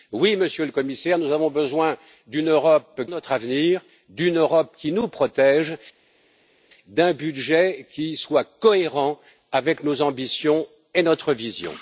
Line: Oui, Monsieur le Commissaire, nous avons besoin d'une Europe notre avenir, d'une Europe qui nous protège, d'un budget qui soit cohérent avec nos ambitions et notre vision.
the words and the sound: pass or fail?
pass